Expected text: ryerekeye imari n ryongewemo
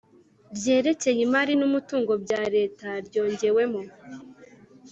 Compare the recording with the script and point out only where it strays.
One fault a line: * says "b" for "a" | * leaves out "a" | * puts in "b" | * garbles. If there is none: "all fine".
* puts in "umutungo bya Leta"